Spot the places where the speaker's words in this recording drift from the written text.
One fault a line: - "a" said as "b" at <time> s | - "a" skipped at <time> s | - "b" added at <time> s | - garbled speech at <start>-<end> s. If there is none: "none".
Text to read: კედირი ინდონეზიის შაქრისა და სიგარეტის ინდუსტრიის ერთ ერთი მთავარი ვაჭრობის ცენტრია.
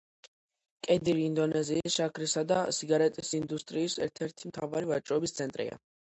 none